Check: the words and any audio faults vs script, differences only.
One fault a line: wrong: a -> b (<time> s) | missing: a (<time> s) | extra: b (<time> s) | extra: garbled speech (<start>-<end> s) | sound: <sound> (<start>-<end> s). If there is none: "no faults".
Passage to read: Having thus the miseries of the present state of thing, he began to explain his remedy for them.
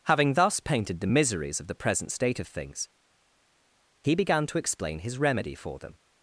extra: painted (0.6 s)
wrong: thing -> things (2.5 s)